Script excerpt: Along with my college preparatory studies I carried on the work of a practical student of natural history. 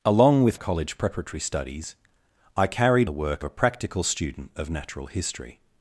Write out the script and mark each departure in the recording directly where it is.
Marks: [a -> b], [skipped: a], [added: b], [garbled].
Along with [skipped: my] college preparatory studies I carried [skipped: on] the work [skipped: of] a practical student of natural history.